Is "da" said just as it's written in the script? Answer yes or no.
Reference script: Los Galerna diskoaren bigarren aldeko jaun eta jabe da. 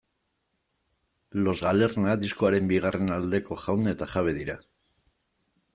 no